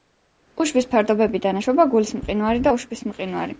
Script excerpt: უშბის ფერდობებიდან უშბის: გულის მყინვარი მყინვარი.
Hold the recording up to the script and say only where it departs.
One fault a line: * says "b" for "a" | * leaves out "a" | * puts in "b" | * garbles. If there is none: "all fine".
* says "ეშვება" for "უშბის"
* puts in "და უშბის"